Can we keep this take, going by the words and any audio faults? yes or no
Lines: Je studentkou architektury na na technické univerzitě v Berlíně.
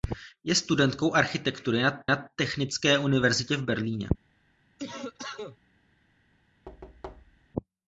no